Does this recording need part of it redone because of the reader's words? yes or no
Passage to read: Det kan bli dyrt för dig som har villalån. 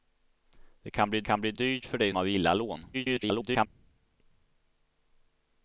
yes